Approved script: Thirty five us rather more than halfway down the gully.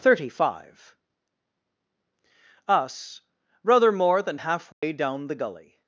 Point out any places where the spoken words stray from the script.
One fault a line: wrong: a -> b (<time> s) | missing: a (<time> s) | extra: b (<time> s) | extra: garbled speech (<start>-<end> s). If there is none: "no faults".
no faults